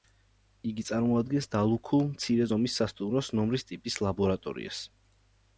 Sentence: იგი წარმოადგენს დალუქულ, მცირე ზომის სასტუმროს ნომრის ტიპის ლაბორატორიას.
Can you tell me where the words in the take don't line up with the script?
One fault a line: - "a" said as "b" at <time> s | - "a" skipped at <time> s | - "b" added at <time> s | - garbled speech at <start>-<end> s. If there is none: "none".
none